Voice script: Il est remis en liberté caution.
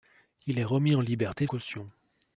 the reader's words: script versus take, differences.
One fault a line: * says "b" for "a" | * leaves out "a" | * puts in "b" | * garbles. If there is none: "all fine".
all fine